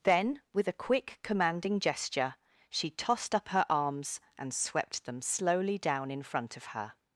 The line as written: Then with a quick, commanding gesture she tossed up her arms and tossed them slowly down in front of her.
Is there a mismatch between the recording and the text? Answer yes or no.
yes